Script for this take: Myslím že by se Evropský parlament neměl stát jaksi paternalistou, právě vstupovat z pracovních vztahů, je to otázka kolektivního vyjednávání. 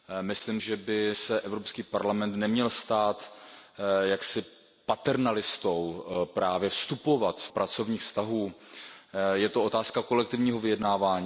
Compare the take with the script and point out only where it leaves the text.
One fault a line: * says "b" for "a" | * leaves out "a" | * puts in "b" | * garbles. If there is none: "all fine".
all fine